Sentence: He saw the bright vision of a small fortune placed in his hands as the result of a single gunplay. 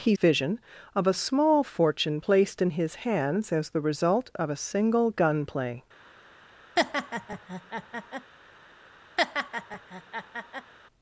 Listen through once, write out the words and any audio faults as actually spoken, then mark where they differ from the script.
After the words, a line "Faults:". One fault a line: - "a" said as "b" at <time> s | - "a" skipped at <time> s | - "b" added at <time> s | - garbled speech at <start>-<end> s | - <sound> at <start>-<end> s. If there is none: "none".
He vision of a small fortune placed in his hands as the result of a single gunplay.
Faults:
- "saw the bright" skipped at 0.1 s
- laugh at 6.8-8.3 s
- laugh at 9.2-10.7 s